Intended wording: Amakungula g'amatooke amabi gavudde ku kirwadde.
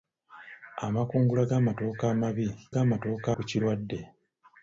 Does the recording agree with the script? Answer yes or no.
no